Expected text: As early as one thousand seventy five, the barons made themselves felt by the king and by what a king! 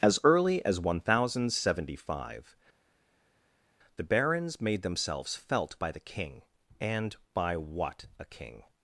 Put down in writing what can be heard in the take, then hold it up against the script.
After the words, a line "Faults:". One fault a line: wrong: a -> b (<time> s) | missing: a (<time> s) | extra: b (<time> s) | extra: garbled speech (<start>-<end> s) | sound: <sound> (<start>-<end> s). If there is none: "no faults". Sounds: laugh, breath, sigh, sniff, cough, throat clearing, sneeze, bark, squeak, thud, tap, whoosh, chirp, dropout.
As early as one thousand seventy five, the barons made themselves felt by the king and by what a king!
Faults:
no faults